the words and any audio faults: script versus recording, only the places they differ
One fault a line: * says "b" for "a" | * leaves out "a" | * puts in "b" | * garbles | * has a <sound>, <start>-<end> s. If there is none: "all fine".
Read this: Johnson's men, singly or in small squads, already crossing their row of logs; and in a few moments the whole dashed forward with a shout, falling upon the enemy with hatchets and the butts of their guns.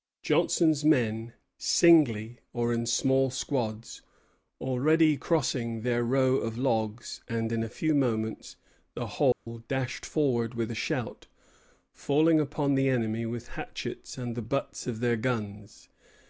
* has a dropout, 9.3-9.5 s